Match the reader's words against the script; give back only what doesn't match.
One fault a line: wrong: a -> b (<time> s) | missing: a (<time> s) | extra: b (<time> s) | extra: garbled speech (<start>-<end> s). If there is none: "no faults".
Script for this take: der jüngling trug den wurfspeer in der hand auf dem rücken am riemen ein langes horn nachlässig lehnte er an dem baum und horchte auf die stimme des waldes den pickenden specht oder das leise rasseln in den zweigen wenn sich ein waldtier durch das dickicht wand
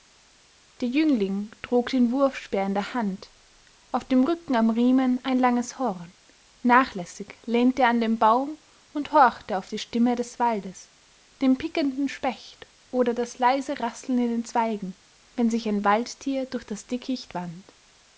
no faults